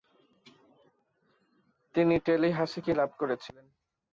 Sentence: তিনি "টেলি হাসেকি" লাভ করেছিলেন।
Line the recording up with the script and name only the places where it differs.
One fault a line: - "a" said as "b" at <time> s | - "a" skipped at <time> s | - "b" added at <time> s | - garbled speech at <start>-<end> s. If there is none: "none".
none